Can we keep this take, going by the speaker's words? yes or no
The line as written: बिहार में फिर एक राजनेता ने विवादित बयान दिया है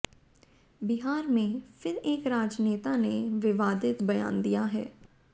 yes